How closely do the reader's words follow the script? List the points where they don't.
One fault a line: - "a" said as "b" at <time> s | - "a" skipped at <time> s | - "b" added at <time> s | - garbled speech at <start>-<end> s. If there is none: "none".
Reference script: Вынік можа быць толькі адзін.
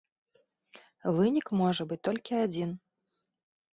none